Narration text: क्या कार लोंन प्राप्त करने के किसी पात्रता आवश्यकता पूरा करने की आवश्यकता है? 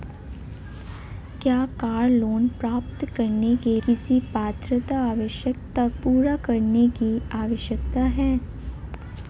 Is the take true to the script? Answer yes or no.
yes